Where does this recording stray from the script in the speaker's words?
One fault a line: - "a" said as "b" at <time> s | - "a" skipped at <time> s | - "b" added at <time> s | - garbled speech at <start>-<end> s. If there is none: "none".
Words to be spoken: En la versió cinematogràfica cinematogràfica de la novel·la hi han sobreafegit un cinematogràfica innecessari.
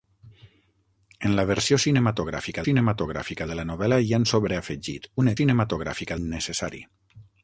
none